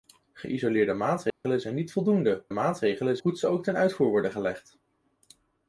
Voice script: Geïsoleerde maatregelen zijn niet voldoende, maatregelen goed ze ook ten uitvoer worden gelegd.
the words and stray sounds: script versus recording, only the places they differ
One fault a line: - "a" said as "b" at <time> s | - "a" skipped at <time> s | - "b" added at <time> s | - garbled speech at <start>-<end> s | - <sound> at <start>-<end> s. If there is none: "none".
- dropout at 1.3-1.4 s